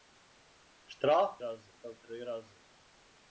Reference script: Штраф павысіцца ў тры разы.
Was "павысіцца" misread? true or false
true